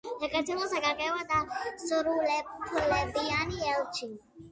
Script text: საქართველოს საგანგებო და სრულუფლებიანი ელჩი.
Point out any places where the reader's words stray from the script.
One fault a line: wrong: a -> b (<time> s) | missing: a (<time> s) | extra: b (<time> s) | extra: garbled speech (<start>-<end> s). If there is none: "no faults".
no faults